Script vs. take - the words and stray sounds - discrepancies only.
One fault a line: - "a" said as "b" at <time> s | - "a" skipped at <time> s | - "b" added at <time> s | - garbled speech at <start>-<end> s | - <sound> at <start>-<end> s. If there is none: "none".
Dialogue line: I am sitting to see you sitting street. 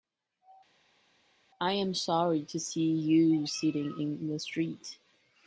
- "sitting" said as "sorry" at 1.9 s
- "in the" added at 4.0 s